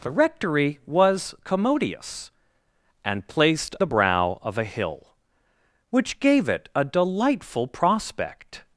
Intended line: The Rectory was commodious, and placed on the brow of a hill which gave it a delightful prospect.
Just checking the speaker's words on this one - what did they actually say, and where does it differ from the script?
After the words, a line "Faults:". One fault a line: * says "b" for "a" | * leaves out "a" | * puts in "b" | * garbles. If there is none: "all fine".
The Rectory was commodious, and placed the brow of a hill which gave it a delightful prospect.
Faults:
* leaves out "on"